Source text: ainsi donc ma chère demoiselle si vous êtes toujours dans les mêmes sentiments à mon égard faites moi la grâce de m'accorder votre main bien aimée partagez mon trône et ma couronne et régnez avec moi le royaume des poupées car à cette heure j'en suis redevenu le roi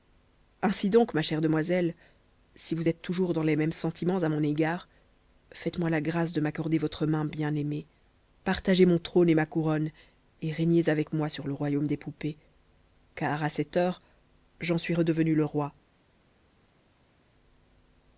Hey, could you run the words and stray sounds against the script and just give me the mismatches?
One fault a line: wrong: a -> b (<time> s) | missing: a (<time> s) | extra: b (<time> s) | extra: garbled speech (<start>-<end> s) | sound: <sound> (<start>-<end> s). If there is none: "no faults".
extra: sur (11.3 s)